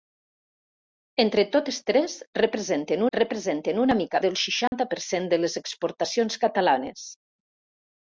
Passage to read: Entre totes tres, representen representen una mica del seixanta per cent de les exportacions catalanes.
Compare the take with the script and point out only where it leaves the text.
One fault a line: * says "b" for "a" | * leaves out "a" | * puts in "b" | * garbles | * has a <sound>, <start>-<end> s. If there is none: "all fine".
* has a dropout, 4.7-4.7 s